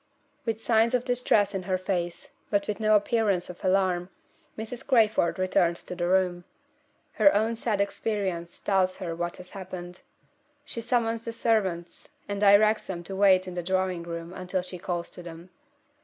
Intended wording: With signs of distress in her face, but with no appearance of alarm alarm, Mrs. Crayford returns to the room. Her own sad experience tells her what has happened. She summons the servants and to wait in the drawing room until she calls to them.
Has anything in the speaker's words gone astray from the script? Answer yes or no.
yes